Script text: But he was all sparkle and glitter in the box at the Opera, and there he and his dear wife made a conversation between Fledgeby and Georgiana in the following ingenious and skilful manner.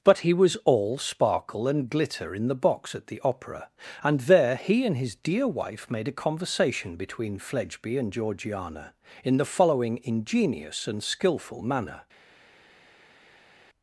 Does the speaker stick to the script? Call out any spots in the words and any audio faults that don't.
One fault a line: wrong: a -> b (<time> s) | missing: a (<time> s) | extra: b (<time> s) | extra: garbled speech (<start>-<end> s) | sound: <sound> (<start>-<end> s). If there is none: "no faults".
no faults